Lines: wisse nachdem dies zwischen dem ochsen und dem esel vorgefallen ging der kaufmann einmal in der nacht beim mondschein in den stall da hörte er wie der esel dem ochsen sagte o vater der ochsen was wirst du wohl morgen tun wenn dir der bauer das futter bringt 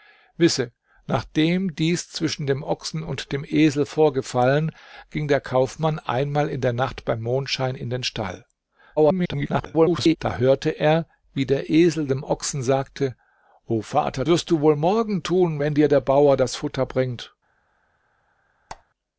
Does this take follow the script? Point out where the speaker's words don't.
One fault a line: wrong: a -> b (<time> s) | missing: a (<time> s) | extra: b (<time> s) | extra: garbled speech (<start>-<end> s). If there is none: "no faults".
extra: garbled speech (9.0-10.2 s)
missing: der ochsen was (14.2 s)